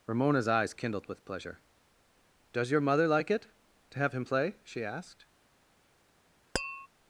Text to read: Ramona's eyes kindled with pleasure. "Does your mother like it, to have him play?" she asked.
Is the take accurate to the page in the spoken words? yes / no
yes